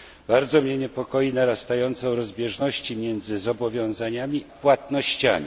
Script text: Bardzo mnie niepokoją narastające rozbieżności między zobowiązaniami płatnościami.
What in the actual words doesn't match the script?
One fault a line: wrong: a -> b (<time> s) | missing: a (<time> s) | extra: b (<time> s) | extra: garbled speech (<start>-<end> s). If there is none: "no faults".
no faults